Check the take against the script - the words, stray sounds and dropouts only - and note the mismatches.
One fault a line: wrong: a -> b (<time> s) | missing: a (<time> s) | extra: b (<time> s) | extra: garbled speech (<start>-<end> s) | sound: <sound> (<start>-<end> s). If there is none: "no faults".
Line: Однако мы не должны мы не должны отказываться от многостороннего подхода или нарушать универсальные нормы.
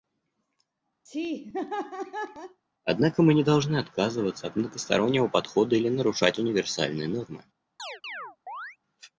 sound: laugh (1.1-2.6 s)
missing: мы не должны (3.8 s)
sound: chirp (7.8-8.8 s)